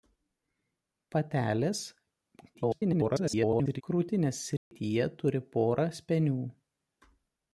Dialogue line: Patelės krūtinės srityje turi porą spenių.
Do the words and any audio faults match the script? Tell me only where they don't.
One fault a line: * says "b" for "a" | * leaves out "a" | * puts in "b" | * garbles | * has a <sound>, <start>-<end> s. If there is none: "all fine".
* garbles
* has a dropout, 4.6-4.7 s